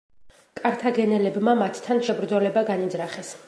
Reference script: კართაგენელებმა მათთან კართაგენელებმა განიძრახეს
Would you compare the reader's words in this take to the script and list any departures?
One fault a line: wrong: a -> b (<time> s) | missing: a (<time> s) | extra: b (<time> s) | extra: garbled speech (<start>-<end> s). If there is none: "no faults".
wrong: კართაგენელებმა -> შებრძოლება (2.1 s)